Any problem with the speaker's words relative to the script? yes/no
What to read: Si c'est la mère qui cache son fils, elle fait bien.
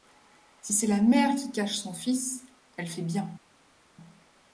no